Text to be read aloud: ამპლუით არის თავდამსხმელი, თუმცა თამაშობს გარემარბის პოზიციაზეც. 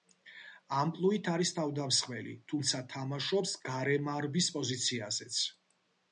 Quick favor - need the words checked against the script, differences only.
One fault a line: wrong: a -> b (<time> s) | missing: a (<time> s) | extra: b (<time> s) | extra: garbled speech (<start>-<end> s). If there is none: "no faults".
no faults